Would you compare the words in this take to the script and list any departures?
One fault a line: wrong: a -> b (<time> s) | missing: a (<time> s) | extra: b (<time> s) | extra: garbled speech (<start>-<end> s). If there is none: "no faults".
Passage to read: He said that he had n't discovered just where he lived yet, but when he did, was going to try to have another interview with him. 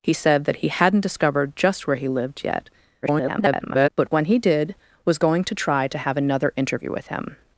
extra: garbled speech (3.0-3.9 s)